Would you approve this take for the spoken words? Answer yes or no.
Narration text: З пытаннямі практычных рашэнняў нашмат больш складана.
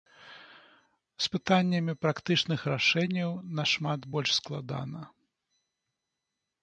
yes